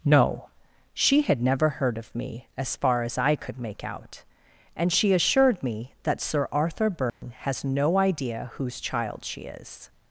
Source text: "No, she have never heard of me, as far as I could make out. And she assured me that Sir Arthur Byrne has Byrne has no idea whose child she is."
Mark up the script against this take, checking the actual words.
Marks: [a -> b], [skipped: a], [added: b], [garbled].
"No, she [have -> had] never heard of me, as far as I could make out. And she assured me that Sir Arthur Byrne has [skipped: Byrne has] no idea whose child she is."